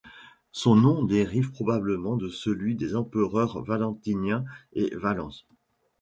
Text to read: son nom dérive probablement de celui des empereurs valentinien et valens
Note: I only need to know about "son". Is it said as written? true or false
true